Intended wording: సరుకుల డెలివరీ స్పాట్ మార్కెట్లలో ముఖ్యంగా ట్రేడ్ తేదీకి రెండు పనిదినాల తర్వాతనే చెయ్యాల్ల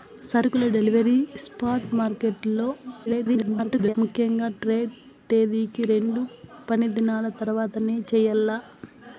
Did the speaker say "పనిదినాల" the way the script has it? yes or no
yes